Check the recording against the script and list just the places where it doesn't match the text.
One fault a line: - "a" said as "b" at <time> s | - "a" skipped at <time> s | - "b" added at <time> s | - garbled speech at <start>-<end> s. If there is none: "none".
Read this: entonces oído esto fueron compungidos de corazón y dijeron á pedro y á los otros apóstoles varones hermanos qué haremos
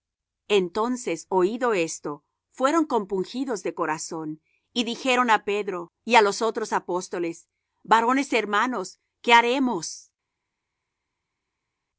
none